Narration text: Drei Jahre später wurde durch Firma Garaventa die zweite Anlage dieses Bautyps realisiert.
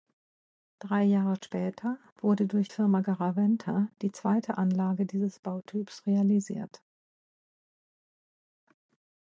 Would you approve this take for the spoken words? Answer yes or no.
yes